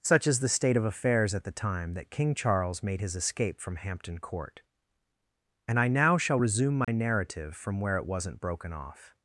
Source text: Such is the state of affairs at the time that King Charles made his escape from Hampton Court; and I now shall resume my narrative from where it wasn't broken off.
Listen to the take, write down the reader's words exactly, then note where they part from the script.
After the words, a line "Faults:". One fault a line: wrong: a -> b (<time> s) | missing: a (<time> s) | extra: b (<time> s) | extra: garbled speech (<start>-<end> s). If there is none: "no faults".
Such is the state of affairs at the time that King Charles made his escape from Hampton Court; and I now shall resume my narrative from where it wasn't broken off.
Faults:
no faults